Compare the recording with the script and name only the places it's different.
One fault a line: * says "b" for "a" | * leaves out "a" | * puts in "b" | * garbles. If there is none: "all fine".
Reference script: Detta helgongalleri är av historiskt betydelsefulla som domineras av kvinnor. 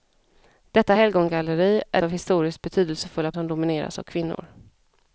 all fine